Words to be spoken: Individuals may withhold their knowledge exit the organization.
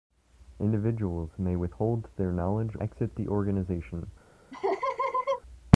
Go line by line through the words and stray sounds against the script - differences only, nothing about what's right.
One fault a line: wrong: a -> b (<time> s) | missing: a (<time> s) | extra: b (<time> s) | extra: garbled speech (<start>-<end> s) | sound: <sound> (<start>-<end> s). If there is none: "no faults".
sound: laugh (4.5-5.4 s)